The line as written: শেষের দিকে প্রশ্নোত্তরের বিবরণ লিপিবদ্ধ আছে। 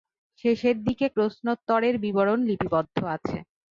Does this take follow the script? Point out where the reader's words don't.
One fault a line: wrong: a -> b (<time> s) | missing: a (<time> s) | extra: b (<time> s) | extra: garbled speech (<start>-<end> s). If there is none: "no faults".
no faults